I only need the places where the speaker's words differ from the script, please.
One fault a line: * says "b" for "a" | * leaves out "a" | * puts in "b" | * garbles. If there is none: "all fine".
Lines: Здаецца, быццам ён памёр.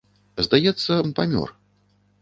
* leaves out "быццам"